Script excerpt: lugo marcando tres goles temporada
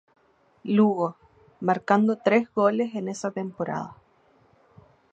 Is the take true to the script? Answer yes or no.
no